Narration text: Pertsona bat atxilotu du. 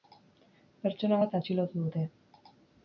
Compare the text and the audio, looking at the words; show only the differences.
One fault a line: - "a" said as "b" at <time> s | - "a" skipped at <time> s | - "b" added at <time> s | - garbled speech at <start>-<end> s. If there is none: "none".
- "du" said as "dute" at 1.9 s